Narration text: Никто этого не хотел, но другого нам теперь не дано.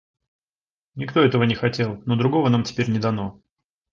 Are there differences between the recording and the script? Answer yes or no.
no